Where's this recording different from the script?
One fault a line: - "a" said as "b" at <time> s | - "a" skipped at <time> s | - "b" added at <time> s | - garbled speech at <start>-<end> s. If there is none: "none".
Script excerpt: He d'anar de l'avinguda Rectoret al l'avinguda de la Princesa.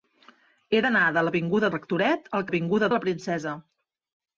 none